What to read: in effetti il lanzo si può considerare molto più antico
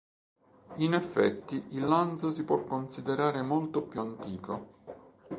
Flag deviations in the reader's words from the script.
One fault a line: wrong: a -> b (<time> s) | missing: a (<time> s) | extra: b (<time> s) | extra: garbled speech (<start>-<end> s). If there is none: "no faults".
no faults